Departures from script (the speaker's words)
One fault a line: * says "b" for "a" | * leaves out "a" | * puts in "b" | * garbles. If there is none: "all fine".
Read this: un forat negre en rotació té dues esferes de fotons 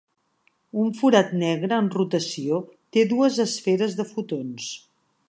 all fine